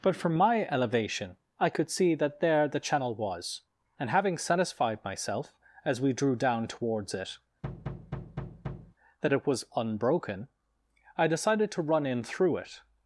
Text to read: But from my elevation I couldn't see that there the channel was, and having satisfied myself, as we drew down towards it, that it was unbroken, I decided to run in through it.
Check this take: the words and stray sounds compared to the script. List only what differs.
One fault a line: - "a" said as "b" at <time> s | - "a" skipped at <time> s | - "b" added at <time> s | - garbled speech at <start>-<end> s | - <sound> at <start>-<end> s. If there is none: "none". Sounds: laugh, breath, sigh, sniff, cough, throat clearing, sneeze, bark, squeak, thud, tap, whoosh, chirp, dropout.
- "couldn't" said as "could" at 1.7 s
- thud at 7.6-9.0 s